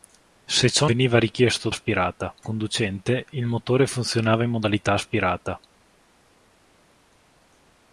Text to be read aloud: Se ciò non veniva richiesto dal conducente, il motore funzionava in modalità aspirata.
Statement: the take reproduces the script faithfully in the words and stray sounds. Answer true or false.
false